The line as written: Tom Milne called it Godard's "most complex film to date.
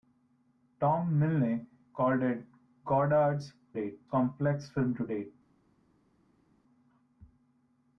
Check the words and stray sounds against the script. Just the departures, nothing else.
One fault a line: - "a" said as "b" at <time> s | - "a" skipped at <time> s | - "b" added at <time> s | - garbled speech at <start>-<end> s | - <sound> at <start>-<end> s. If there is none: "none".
- "most" said as "date" at 3.7 s